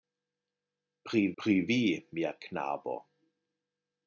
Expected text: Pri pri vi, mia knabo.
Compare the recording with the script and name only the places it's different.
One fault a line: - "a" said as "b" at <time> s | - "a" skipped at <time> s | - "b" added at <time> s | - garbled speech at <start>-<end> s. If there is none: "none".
none